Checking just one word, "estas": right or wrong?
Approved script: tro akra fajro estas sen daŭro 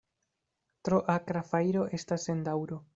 right